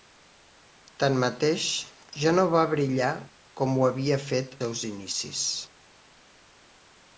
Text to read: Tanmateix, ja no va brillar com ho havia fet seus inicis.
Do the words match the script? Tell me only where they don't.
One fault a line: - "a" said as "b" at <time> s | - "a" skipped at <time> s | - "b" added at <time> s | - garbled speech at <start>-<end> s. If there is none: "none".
none